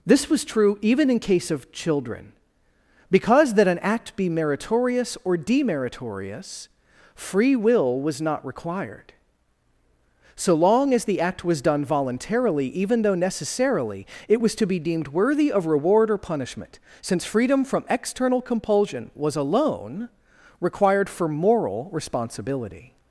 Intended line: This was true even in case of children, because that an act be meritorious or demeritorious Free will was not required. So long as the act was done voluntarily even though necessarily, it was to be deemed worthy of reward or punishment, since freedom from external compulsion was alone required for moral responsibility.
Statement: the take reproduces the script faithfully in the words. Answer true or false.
true